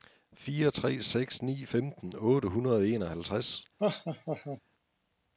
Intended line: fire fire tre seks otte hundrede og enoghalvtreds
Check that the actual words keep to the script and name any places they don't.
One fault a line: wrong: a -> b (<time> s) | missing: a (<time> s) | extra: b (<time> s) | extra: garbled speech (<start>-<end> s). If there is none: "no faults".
missing: fire (0.7 s)
extra: ni femten (1.4 s)